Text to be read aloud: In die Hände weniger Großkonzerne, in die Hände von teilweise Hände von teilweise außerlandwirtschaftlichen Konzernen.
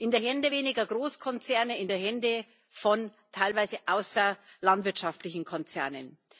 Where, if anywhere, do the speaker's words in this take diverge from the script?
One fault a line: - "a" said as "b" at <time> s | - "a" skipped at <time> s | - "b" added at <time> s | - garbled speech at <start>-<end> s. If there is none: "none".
- "Hände von teilweise" skipped at 3.8 s